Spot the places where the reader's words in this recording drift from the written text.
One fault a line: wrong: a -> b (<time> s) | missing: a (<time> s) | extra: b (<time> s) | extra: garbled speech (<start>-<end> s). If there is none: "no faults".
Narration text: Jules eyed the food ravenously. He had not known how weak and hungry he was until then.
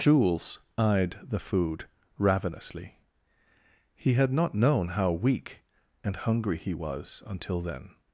no faults